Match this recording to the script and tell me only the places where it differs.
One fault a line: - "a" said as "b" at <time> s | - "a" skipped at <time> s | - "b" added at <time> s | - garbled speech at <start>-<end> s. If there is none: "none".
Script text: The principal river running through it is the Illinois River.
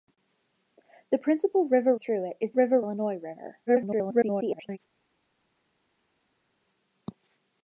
- "running" skipped at 1.9 s
- "the" said as "river" at 2.5 s
- garbled speech at 3.7-4.8 s